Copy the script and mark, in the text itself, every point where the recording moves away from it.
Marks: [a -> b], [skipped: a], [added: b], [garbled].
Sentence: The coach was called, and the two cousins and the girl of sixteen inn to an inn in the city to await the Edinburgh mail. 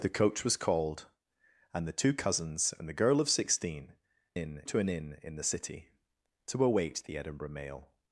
The coach was called, and the two cousins and the girl of sixteen inn to an inn in the city to await the Edinburgh mail.